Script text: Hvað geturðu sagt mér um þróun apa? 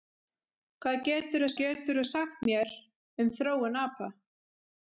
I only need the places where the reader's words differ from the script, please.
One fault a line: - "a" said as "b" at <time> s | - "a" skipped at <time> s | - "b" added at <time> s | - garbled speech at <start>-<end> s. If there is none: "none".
- "geturðu" added at 1.6 s